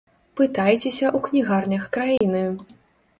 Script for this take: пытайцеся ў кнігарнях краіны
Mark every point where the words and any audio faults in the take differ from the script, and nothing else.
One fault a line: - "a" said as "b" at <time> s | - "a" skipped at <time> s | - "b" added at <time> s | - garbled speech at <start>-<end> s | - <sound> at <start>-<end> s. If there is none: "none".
- dropout at 2.2-2.2 s